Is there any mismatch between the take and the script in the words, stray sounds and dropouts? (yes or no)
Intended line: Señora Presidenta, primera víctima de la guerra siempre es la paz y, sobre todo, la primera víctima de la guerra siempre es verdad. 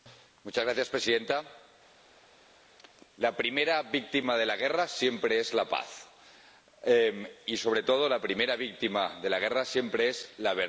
yes